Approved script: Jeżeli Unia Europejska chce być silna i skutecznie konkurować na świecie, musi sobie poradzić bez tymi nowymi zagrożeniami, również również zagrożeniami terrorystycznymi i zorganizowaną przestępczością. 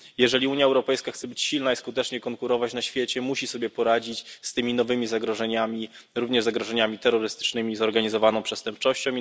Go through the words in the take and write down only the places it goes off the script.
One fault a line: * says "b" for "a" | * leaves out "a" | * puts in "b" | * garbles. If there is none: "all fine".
* says "z" for "bez"
* leaves out "również"